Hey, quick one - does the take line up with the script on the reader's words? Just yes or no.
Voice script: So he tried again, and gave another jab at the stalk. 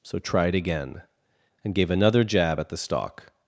no